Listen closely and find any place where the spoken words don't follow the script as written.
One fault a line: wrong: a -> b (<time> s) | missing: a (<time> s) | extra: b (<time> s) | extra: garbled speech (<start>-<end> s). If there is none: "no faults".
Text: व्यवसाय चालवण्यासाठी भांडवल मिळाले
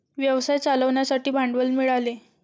no faults